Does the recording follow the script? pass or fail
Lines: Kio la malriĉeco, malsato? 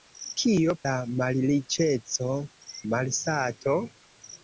pass